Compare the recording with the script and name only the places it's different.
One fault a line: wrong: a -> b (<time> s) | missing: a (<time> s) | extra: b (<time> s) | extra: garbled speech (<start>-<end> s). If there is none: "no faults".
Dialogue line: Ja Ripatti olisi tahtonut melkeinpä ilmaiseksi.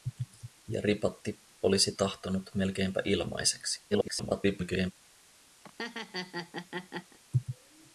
extra: garbled speech (3.9-4.9 s)